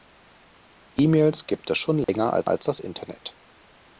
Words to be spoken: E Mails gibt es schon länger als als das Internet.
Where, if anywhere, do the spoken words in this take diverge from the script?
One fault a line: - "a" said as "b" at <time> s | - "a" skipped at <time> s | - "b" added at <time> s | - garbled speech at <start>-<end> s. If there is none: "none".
none